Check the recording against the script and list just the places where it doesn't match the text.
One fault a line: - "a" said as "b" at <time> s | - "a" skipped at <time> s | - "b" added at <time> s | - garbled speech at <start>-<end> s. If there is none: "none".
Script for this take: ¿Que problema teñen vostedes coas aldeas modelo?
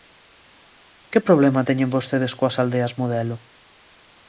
none